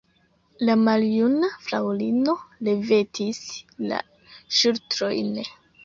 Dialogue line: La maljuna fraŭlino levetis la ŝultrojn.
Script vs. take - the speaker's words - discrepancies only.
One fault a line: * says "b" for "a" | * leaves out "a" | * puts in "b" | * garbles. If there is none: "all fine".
all fine